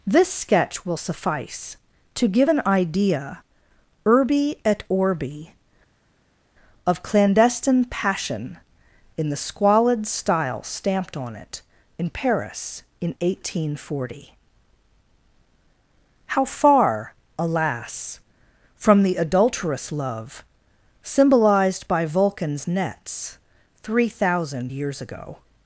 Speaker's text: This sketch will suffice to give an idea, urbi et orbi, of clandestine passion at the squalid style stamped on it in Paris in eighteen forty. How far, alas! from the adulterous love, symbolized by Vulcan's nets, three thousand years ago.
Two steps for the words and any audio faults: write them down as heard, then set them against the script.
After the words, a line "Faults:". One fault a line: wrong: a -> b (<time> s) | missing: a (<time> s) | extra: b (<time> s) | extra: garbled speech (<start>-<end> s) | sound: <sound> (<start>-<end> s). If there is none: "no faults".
This sketch will suffice to give an idea, urbi et orbi, of clandestine passion in the squalid style stamped on it in Paris in eighteen forty. How far, alas! from the adulterous love, symbolized by Vulcan's nets, three thousand years ago.
Faults:
wrong: at -> in (9.2 s)